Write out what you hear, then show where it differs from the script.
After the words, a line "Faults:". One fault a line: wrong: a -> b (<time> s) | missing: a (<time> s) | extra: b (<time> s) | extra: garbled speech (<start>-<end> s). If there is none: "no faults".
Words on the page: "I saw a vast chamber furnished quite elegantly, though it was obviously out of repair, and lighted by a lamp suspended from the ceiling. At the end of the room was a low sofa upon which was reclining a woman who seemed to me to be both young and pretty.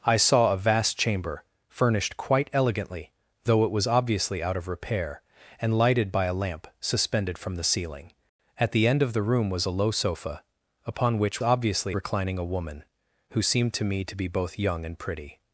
"I saw a vast chamber furnished quite elegantly, though it was obviously out of repair, and lighted by a lamp suspended from the ceiling. At the end of the room was a low sofa upon which obviously reclining a woman who seemed to me to be both young and pretty.
Faults:
wrong: was -> obviously (11.4 s)